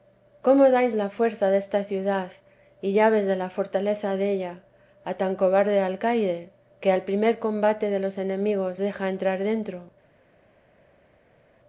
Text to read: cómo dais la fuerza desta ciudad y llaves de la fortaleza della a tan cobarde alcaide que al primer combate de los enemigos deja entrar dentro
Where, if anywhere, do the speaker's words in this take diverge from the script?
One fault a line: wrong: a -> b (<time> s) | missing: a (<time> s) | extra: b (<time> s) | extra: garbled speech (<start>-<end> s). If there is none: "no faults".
no faults